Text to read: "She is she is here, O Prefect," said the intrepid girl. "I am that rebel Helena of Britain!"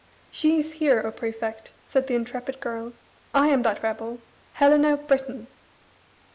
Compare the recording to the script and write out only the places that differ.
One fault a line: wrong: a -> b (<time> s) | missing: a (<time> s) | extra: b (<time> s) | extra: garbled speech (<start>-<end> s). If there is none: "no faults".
missing: she is (0.7 s)